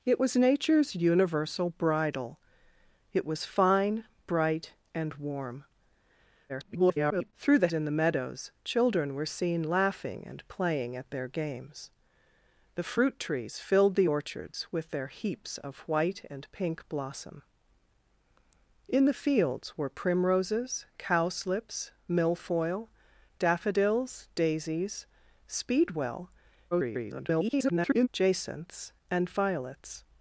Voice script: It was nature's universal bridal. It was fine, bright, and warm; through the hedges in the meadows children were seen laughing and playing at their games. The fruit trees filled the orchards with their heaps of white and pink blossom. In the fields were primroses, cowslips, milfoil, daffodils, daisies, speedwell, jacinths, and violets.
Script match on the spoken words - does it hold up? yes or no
no